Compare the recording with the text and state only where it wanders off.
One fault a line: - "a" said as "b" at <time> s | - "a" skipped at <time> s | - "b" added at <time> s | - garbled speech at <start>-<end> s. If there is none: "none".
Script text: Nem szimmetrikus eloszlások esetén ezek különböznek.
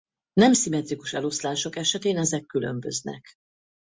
none